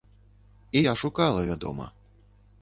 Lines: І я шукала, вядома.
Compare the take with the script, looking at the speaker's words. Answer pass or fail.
pass